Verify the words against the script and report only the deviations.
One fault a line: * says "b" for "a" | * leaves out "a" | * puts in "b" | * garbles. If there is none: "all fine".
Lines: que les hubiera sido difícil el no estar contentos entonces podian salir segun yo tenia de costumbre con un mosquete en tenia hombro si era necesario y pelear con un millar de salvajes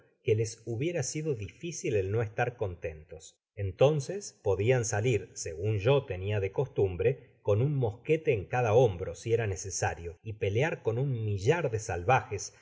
* says "cada" for "tenia"